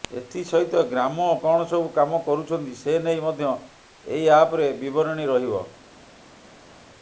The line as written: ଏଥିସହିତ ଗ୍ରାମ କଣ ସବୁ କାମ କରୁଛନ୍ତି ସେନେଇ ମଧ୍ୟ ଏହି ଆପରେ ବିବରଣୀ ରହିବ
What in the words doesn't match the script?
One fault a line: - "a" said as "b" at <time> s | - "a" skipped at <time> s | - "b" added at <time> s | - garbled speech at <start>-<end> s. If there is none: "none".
none